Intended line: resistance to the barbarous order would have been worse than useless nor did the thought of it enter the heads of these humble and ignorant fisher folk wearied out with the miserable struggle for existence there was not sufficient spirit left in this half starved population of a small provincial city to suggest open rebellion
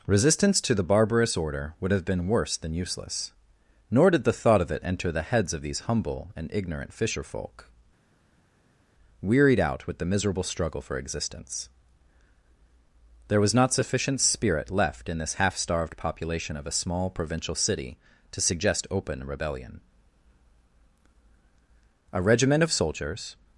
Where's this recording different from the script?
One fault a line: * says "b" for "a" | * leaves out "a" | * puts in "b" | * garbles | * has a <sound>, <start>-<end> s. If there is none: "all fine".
* puts in "a regiment of soldiers"